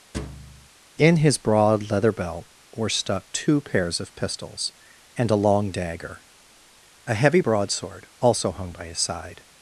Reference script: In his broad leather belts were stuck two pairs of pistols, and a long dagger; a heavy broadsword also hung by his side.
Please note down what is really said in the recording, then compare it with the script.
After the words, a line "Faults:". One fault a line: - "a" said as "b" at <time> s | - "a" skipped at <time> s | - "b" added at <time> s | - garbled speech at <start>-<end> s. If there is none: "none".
In his broad leather belt were stuck two pairs of pistols, and a long dagger; a heavy broadsword also hung by his side.
Faults:
- "belts" said as "belt" at 2.1 s